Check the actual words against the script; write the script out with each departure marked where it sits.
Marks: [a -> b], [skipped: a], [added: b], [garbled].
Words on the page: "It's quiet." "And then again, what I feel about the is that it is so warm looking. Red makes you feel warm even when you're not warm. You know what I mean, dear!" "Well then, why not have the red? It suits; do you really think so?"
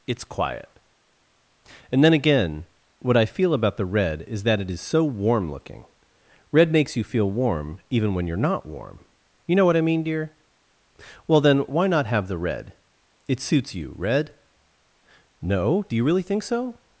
"It's quiet." "And then again, what I feel about the [added: red] is that it is so warm looking. Red makes you feel warm even when you're not warm. You know what I mean, dear!" "Well then, why not have the red? It suits; [added: you red No] do you really think so?"